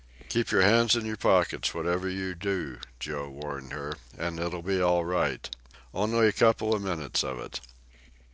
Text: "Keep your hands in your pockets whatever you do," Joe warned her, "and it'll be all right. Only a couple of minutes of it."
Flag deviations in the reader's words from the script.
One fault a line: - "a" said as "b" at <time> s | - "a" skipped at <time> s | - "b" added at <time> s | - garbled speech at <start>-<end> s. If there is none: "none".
none